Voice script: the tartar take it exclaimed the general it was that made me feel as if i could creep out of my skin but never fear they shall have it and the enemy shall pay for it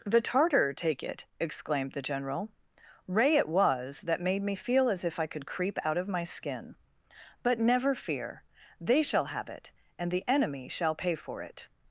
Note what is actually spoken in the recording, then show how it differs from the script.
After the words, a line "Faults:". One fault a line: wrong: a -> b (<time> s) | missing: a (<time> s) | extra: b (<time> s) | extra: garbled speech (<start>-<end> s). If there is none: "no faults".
the tartar take it exclaimed the general ray it was that made me feel as if i could creep out of my skin but never fear they shall have it and the enemy shall pay for it
Faults:
extra: ray (3.1 s)